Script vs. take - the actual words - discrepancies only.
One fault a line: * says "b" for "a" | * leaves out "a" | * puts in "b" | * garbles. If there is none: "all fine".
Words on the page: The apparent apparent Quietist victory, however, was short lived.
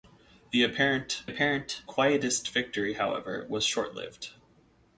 all fine